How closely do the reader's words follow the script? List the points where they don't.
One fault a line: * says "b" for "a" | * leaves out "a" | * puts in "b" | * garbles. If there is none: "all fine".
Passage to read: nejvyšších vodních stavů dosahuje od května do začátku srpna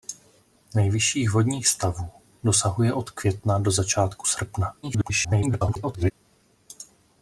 * garbles